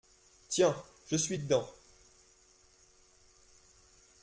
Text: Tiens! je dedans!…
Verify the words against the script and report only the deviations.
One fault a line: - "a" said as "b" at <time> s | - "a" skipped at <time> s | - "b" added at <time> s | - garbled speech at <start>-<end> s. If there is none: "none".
- "suis" added at 1.1 s